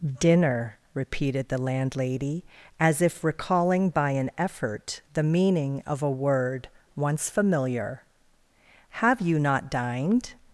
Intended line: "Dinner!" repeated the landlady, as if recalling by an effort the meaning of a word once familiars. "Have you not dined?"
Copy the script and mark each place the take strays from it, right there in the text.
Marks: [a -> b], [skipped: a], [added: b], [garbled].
"Dinner!" repeated the landlady, as if recalling by an effort the meaning of a word once [familiars. -> familiar] "Have you not dined?"